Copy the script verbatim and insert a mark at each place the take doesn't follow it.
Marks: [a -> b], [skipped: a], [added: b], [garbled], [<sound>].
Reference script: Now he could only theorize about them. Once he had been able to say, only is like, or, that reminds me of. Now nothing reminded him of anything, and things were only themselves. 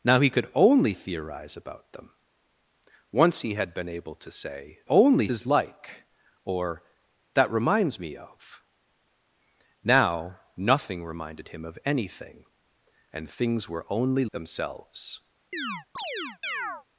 Now he could only theorize about them. Once he had been able to say, only is like, or, that reminds me of. Now nothing reminded him of anything, and things were only themselves. [chirp]